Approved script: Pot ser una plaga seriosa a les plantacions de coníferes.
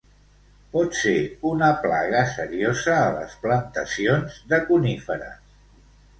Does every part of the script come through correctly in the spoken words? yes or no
yes